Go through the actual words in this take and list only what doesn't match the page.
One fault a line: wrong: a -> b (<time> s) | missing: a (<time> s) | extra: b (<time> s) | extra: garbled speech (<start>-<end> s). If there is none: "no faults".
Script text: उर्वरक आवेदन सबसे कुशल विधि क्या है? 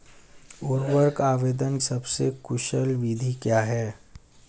no faults